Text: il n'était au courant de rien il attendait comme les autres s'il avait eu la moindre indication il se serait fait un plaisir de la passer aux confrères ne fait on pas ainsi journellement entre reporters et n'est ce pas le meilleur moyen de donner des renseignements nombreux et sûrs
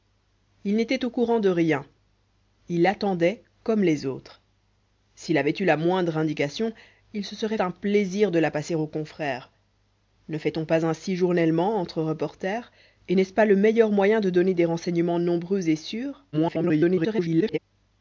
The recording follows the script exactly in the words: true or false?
false